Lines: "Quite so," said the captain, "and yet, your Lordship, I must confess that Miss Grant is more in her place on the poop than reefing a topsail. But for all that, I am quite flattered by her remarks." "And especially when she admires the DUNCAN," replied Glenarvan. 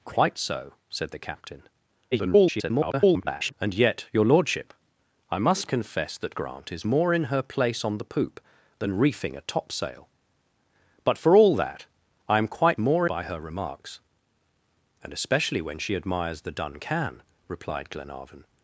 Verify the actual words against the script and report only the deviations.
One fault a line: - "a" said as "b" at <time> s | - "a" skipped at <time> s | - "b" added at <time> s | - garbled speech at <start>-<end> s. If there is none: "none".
- garbled speech at 2.1-3.5 s
- "Miss" skipped at 6.4 s
- "flattered" said as "more" at 12.8 s